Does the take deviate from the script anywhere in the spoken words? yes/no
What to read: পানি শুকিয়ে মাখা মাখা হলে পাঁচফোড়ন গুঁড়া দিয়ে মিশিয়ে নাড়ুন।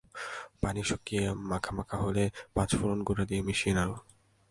no